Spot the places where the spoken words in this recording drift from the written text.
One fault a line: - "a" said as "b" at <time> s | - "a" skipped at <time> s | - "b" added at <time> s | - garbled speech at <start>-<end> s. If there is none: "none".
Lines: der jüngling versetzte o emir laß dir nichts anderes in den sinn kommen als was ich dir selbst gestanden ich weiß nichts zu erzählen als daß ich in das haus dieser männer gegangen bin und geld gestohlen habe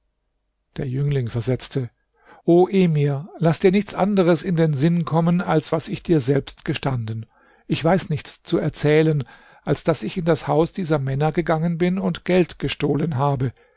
none